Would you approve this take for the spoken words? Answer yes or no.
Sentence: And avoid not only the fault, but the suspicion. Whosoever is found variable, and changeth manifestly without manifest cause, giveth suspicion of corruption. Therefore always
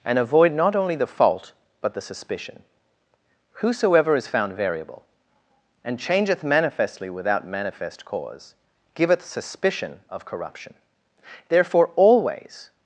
yes